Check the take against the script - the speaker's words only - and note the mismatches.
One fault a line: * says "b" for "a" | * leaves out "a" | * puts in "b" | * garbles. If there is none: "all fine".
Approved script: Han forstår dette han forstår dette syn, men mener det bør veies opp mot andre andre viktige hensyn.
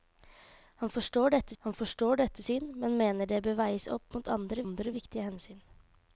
all fine